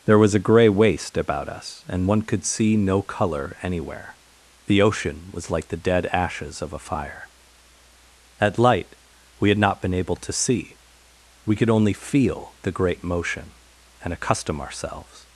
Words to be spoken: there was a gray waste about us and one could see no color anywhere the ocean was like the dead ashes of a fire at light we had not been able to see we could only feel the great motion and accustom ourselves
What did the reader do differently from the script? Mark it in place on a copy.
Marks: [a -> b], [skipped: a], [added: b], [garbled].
there was a gray waste about us and one could see no color anywhere the ocean was like the dead ashes of a fire at light we had not been able to see we could only feel the great motion and accustom ourselves